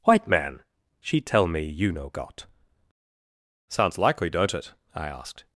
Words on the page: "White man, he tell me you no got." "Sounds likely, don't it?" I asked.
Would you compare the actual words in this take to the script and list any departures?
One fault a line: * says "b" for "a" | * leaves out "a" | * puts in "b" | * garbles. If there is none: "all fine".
* says "she" for "he"